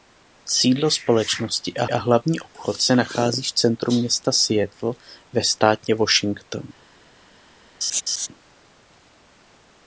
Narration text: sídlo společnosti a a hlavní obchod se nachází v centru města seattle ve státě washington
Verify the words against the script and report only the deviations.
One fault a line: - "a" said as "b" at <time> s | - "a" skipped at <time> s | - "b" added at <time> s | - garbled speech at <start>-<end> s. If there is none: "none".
none